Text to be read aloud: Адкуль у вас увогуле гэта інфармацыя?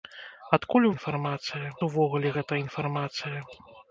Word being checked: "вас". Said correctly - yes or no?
no